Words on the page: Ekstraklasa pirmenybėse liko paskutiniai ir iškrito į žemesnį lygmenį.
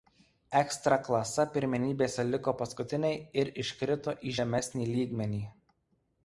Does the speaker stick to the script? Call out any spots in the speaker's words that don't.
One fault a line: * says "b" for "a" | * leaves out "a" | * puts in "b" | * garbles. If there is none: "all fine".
all fine